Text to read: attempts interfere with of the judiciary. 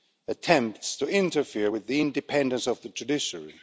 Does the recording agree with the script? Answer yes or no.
no